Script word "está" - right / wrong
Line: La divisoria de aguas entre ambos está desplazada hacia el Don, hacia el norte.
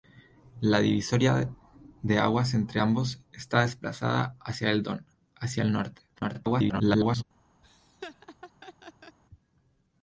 right